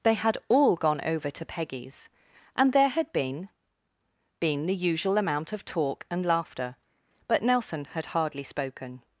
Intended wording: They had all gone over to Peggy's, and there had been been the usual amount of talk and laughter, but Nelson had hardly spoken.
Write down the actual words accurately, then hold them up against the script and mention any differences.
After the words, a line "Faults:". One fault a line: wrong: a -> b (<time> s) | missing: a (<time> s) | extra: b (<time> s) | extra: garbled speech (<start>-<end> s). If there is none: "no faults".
They had all gone over to Peggy's, and there had been been the usual amount of talk and laughter, but Nelson had hardly spoken.
Faults:
no faults